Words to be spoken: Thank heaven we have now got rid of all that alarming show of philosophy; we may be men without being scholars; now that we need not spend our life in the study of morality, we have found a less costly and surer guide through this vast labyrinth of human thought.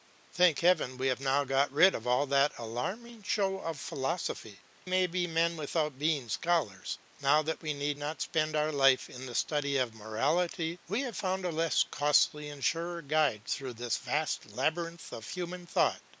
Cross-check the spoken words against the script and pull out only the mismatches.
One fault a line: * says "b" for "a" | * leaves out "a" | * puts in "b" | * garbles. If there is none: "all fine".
* leaves out "we"